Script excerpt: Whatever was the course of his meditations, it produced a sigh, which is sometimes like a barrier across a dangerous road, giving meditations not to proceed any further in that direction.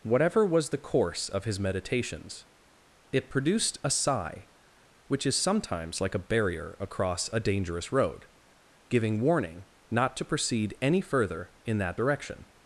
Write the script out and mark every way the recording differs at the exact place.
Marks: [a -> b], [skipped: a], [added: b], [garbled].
Whatever was the course of his meditations, it produced a sigh, which is sometimes like a barrier across a dangerous road, giving [meditations -> warning] not to proceed any further in that direction.